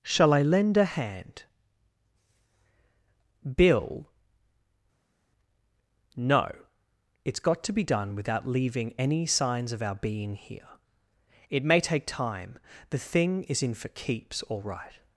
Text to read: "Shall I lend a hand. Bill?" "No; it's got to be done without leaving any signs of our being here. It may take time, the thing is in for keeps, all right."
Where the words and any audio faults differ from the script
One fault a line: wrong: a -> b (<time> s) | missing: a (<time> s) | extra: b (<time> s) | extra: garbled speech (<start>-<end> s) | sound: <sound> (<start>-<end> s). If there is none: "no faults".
no faults